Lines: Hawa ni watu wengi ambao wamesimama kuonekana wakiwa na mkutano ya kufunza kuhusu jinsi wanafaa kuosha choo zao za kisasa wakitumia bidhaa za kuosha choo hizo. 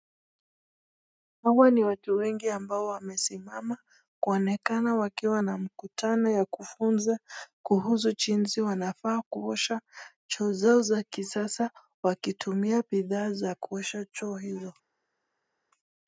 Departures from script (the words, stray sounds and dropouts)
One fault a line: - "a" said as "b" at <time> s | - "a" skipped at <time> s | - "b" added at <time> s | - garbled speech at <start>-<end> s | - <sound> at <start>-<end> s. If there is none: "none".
none